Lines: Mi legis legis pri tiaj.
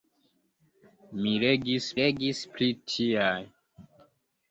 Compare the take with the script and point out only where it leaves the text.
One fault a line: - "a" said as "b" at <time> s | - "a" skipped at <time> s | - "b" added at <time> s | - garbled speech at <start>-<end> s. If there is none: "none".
none